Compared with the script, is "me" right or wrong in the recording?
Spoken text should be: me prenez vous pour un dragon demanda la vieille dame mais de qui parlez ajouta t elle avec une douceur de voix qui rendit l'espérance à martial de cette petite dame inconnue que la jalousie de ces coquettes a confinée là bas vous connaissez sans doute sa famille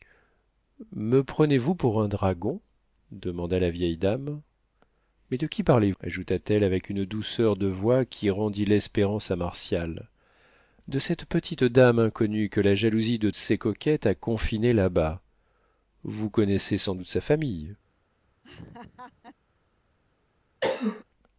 right